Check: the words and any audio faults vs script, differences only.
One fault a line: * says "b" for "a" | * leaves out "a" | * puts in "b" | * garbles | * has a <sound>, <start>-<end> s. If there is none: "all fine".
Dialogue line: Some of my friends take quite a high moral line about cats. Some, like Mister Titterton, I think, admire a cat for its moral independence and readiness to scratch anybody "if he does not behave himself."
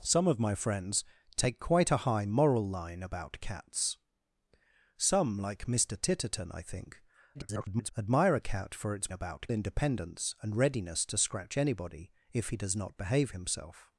* garbles
* says "about" for "moral"